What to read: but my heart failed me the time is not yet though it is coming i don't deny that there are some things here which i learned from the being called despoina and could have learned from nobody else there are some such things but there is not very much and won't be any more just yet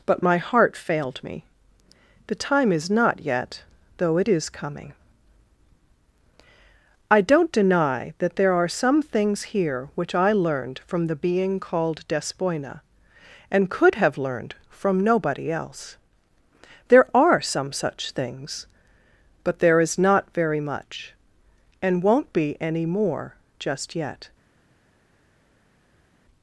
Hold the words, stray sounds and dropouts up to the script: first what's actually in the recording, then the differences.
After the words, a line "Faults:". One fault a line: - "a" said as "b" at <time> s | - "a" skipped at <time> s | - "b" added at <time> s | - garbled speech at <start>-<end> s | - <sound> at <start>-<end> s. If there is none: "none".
but my heart failed me the time is not yet though it is coming i don't deny that there are some things here which i learned from the being called despoina and could have learned from nobody else there are some such things but there is not very much and won't be any more just yet
Faults:
none